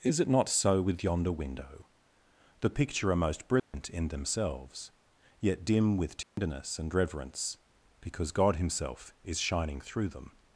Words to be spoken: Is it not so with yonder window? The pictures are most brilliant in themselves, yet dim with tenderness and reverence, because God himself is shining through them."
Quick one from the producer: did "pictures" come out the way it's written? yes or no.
no